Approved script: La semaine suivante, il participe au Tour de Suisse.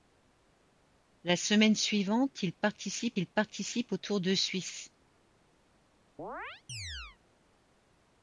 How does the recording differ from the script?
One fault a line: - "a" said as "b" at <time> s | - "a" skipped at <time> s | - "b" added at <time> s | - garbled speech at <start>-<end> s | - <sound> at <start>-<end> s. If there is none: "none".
- "il participe" added at 3.2 s
- chirp at 6.2-7.2 s